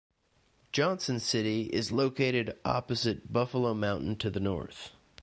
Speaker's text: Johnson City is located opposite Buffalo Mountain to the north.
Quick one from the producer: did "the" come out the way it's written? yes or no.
yes